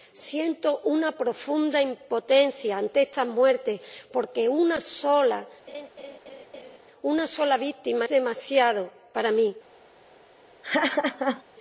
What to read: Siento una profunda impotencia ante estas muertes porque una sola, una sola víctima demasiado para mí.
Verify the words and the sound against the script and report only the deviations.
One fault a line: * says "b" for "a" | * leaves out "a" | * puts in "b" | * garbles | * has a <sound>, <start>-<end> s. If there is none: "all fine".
* has a laugh, 5.7-6.8 s
* has a laugh, 10.6-11.4 s